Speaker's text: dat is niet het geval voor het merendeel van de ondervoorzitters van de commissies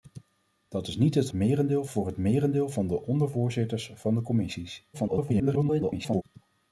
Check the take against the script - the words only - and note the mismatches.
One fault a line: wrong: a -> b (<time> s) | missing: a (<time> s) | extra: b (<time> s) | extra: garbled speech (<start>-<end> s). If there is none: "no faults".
wrong: geval -> merendeel (1.3 s)
extra: garbled speech (4.9-6.2 s)